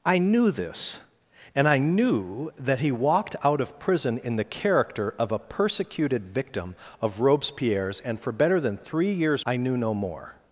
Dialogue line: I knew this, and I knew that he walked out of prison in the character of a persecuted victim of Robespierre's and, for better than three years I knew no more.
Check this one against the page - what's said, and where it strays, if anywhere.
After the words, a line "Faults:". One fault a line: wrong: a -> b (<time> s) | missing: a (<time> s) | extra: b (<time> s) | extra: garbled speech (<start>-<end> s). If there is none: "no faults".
I knew this, and I knew that he walked out of prison in the character of a persecuted victim of Robespierre's and, for better than three years I knew no more.
Faults:
no faults